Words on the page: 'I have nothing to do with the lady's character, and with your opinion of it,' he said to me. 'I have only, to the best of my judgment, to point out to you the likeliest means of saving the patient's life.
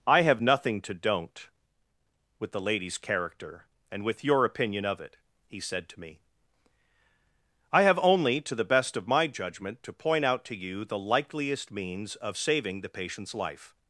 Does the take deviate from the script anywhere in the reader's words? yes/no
yes